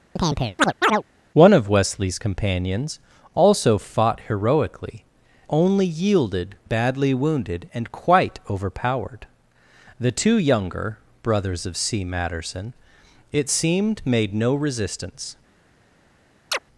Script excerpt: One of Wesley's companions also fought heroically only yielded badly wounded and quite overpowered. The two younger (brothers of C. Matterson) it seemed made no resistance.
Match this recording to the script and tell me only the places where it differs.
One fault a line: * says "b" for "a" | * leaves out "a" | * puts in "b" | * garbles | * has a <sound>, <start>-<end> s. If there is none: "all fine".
* has a chirp, 0.2-1.0 s
* has a chirp, 16.5-16.6 s